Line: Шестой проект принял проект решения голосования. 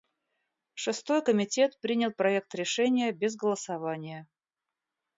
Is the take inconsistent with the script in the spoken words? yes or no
yes